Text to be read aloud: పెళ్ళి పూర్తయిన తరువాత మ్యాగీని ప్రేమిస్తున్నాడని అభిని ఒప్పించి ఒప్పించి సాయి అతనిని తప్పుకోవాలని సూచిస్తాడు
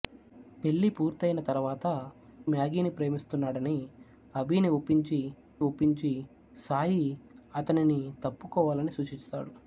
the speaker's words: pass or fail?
pass